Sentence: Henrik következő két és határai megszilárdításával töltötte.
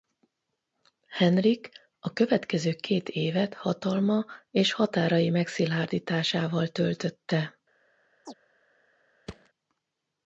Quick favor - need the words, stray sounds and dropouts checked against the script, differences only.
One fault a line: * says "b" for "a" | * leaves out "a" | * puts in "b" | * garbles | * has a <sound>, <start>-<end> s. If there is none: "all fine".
* puts in "a"
* puts in "évet hatalma"
* has a chirp, 8.3-8.3 s
* has a thud, 9.3-9.5 s